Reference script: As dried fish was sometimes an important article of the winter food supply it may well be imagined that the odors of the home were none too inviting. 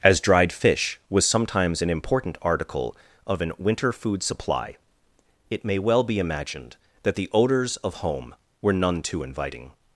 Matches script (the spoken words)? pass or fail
fail